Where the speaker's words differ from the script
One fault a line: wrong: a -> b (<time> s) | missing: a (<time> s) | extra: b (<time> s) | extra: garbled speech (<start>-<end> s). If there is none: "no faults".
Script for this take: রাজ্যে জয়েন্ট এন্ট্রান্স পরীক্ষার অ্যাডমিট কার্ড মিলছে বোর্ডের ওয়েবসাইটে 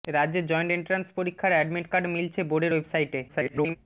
extra: garbled speech (3.3-3.8 s)